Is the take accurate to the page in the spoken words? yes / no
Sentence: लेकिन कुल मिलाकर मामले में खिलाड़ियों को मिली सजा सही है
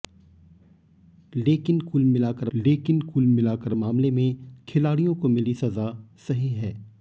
no